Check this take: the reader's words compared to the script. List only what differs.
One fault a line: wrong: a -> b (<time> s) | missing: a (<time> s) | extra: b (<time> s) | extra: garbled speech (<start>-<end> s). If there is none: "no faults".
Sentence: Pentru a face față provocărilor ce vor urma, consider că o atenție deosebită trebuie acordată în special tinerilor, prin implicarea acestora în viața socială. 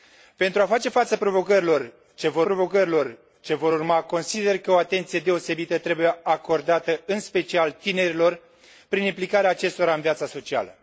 extra: provocărilor ce vor (2.4 s)